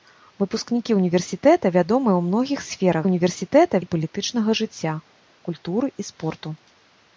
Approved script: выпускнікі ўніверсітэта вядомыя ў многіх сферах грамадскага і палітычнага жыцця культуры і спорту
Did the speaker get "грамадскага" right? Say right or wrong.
wrong